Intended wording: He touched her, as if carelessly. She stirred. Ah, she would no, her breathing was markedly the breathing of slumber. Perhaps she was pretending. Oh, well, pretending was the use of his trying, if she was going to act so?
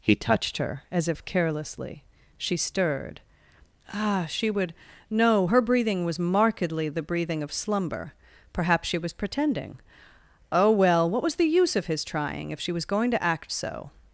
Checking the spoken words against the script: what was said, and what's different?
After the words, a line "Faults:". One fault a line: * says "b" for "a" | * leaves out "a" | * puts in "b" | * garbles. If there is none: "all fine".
He touched her, as if carelessly. She stirred. Ah, she would no, her breathing was markedly the breathing of slumber. Perhaps she was pretending. Oh, well, what was the use of his trying, if she was going to act so?
Faults:
* says "what" for "pretending"